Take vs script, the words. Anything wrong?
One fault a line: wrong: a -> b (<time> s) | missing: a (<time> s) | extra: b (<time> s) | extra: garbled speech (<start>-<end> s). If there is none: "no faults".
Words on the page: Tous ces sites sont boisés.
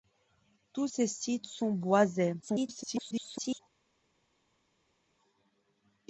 extra: garbled speech (2.4-3.6 s)